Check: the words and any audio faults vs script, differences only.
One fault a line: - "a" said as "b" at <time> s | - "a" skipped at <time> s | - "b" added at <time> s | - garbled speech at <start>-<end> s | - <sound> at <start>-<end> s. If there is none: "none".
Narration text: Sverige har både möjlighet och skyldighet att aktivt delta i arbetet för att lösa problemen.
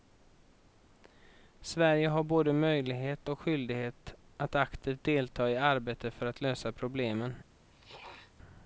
- throat clearing at 7.7-8.3 s